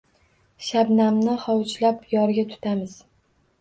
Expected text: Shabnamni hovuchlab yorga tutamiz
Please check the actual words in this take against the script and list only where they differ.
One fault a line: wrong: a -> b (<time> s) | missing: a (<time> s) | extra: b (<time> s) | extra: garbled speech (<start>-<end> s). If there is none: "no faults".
no faults